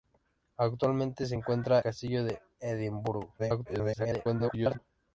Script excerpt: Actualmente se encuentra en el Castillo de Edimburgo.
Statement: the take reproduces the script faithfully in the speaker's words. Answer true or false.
false